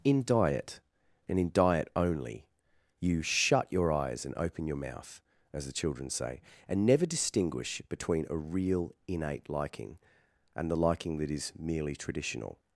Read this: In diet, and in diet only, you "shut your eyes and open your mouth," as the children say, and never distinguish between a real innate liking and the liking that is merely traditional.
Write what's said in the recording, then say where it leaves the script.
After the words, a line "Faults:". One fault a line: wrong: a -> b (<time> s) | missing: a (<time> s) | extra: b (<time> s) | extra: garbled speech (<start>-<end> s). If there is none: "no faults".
In diet, and in diet only, you "shut your eyes and open your mouth," as the children say, and never distinguish between a real innate liking and the liking that is merely traditional.
Faults:
no faults